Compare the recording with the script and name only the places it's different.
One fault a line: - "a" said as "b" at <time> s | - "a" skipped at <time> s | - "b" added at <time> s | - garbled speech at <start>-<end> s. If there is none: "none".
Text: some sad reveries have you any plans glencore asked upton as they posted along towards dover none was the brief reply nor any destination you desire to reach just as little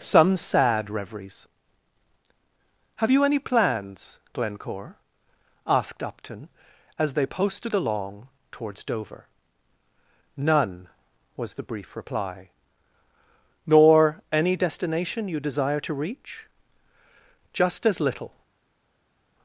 none